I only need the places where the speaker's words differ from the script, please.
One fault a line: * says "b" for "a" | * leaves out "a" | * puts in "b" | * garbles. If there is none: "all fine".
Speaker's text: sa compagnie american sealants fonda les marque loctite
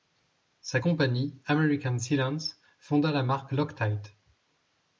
* says "la" for "les"